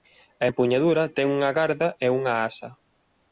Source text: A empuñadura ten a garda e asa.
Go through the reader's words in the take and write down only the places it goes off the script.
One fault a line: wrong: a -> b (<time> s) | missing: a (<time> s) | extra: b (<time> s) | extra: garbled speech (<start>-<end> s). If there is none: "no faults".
wrong: a -> unha (1.4 s)
extra: unha (2.2 s)